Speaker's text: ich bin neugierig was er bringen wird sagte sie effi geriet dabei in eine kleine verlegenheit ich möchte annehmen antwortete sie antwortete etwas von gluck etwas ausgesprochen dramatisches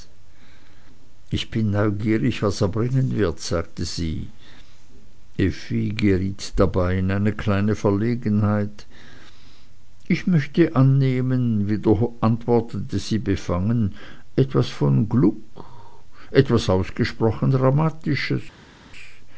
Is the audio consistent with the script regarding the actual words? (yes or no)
no